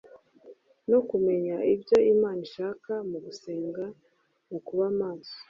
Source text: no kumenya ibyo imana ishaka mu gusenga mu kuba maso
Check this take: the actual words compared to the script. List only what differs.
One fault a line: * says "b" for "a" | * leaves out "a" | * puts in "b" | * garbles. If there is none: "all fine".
all fine